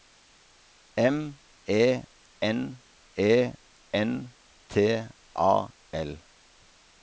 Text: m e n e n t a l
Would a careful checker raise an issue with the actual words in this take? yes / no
no